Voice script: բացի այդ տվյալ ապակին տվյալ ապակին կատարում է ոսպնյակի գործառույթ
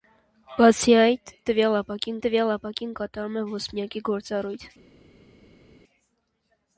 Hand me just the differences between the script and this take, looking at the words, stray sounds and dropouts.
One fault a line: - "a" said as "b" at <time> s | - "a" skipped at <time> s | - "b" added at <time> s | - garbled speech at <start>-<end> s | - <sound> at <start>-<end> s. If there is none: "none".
none